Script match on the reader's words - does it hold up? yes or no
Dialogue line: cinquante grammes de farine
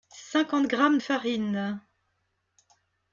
no